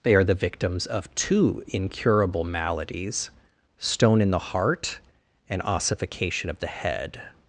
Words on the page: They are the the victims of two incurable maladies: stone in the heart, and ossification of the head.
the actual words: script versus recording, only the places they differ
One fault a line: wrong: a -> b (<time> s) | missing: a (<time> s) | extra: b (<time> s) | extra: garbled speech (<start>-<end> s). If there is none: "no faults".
missing: the (0.3 s)